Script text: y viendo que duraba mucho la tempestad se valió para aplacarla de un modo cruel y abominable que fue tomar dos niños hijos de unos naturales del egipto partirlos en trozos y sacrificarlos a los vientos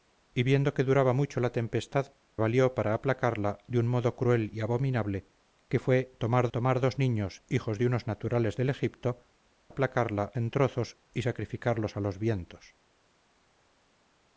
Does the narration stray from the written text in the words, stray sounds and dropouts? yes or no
yes